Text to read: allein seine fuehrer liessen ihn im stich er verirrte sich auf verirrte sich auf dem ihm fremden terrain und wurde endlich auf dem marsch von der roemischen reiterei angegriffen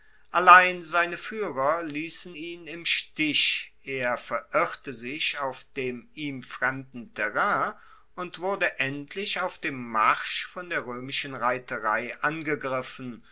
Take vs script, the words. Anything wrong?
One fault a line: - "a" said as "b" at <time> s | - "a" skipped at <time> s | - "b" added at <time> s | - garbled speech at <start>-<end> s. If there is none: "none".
- "verirrte sich auf" skipped at 5.6 s